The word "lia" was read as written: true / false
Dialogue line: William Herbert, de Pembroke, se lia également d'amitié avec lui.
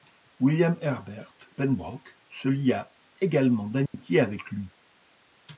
true